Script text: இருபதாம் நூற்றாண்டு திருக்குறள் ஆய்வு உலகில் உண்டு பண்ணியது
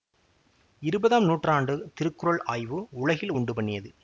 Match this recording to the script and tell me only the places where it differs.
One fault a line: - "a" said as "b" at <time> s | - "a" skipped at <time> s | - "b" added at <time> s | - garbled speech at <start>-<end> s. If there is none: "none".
none